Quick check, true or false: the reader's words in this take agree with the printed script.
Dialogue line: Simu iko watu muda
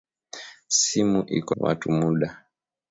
true